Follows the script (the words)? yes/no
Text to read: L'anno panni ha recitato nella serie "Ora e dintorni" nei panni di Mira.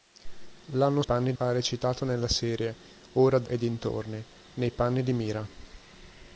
yes